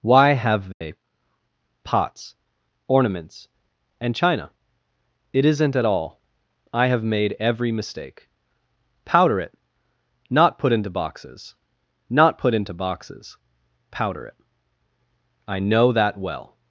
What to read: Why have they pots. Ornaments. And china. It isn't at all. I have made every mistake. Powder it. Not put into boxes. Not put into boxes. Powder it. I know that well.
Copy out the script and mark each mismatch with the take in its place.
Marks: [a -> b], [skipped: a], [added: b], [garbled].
Why have they pots. Ornaments. And china. It isn't at all. I have made every mistake. Powder it. Not put into boxes. Not put into boxes. Powder it. I know that well.